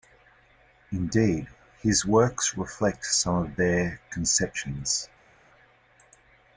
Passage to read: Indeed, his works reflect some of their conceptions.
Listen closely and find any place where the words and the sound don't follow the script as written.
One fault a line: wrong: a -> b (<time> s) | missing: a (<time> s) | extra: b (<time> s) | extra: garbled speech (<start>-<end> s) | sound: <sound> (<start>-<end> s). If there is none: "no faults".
no faults